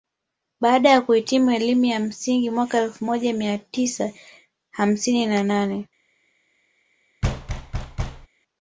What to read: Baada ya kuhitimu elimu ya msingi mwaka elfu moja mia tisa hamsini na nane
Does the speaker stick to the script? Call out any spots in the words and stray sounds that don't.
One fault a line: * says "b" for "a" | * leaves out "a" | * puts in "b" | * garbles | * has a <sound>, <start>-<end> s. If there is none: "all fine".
* has a thud, 7.2-8.3 s